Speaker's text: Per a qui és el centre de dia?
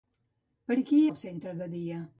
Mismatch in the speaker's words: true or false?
true